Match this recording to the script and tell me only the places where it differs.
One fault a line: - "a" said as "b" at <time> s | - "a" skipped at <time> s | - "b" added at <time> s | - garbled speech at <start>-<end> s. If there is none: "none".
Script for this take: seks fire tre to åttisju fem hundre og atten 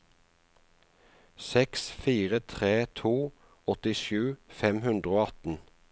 none